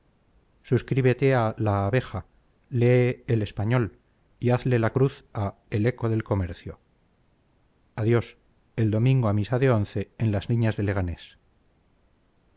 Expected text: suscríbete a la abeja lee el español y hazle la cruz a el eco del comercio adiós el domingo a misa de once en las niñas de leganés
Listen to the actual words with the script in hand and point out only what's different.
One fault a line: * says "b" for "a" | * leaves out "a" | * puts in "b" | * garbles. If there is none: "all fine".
all fine